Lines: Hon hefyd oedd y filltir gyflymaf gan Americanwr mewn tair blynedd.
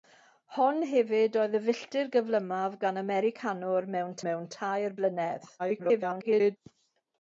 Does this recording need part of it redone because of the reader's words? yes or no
yes